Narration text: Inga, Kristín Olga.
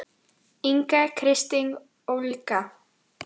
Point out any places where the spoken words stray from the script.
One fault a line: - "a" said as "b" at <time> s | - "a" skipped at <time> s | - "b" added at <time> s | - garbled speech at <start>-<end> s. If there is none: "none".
none